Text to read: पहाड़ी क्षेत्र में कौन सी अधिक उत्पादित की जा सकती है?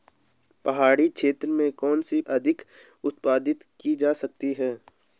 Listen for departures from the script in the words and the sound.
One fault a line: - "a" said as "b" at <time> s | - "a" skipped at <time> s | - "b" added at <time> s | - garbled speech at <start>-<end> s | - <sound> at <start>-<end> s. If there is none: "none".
none